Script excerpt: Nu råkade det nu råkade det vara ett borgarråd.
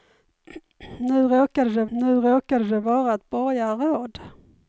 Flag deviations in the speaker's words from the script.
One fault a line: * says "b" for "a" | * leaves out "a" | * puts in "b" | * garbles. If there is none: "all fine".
all fine